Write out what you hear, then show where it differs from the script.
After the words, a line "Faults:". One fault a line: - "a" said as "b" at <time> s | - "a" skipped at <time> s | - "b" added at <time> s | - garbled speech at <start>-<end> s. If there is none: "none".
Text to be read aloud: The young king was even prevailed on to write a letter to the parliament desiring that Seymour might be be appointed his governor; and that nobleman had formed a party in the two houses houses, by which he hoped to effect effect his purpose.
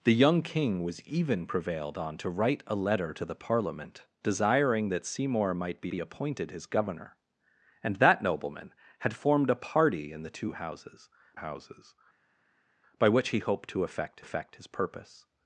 The young king was even prevailed on to write a letter to the parliament desiring that Seymour might be be appointed his governor; and that nobleman had formed a party in the two houses houses, by which he hoped to effect effect his purpose.
Faults:
none